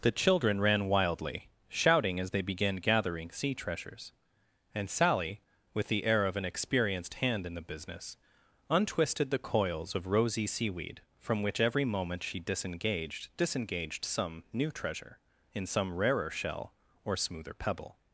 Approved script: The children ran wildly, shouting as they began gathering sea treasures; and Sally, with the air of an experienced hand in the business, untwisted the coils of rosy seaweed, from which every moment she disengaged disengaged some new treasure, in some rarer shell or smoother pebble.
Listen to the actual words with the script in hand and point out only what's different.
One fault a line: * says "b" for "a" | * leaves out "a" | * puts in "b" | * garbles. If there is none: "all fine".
all fine